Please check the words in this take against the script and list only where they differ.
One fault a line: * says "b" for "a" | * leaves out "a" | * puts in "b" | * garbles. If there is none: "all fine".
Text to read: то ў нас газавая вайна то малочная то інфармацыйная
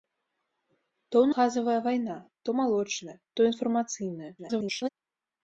* leaves out "нас"
* garbles